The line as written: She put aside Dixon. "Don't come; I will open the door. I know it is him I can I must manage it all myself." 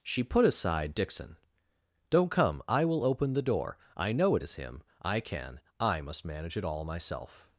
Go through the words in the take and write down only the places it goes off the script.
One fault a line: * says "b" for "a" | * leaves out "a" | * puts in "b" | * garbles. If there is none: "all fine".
all fine